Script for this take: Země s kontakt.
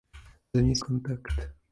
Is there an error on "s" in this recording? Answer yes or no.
no